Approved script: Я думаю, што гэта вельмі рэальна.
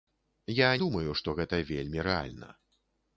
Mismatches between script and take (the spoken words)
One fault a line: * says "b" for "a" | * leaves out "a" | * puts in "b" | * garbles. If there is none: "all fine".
all fine